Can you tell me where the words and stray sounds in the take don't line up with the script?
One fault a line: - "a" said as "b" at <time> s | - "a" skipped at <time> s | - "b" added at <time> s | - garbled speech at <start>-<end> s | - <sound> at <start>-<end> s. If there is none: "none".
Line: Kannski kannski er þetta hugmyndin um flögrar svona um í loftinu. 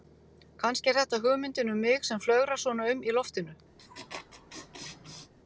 - "kannski" skipped at 0.9 s
- "mig sem" added at 1.9 s
- laugh at 3.8-5.3 s